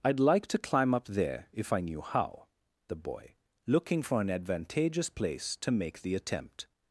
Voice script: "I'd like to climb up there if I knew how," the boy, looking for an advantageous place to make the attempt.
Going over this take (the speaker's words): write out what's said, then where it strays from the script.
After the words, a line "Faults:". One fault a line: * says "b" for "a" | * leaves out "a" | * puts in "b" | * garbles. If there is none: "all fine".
"I'd like to climb up there if I knew how," the boy, looking for an advantageous place to make the attempt.
Faults:
all fine